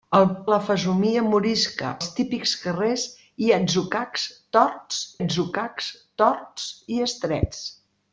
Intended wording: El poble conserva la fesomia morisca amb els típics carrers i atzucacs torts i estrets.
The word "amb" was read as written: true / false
false